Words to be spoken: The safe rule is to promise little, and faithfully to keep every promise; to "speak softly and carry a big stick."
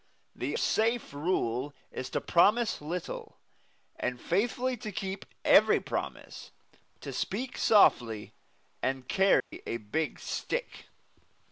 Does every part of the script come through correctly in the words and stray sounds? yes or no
no